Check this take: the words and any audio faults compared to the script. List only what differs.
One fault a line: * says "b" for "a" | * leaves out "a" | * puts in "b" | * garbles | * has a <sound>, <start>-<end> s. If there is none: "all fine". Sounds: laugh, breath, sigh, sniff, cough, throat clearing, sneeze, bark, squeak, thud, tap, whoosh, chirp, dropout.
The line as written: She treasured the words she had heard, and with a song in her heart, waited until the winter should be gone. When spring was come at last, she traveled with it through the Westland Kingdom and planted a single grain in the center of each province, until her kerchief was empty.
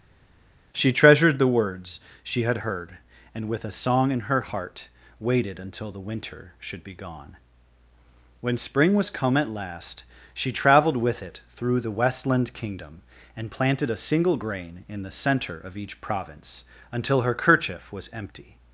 all fine